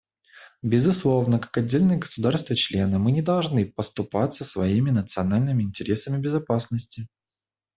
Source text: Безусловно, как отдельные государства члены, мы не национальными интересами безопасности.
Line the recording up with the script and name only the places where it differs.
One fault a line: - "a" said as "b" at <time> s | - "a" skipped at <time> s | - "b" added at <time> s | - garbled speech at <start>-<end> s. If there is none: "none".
- "должны поступаться своими" added at 3.2 s